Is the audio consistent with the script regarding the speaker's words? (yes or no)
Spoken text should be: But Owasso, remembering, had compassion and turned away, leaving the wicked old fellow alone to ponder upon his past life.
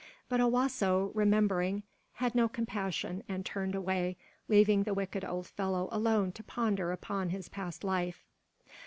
no